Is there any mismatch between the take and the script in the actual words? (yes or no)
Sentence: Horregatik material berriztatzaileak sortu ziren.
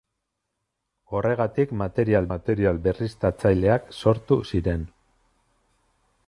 yes